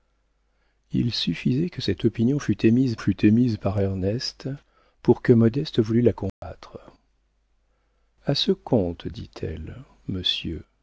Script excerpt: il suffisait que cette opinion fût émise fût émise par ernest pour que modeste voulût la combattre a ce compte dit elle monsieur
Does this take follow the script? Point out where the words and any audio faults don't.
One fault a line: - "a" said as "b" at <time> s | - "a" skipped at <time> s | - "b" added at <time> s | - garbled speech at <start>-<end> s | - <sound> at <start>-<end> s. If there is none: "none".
- dropout at 6.3-6.4 s